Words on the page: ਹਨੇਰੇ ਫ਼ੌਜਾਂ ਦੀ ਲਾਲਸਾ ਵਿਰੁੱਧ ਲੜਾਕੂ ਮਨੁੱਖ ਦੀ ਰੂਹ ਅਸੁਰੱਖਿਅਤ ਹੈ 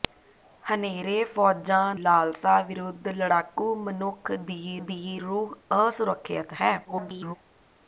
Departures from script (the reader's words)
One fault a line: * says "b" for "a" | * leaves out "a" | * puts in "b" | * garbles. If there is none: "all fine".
* leaves out "ਦੀ"
* puts in "ਦੀ"
* garbles